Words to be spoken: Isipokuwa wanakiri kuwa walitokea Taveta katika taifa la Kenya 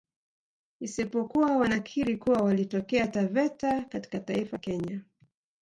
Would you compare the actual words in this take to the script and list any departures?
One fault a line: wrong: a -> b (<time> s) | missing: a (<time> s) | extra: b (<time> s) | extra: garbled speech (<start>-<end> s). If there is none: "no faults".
missing: la (4.6 s)